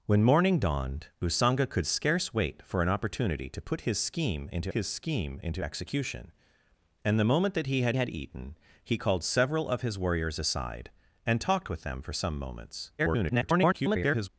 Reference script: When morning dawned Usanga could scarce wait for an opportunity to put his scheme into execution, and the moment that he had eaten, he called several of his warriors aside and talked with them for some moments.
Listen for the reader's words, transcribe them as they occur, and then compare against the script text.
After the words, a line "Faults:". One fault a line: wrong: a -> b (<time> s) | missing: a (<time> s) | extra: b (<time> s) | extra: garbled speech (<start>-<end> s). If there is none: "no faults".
When morning dawned Usanga could scarce wait for an opportunity to put his scheme into his scheme into execution, and the moment that he had had eaten, he called several of his warriors aside and talked with them for some moments. [garbled]
Faults:
extra: his scheme into (4.7 s)
extra: had (8.0 s)
extra: garbled speech (13.0-14.3 s)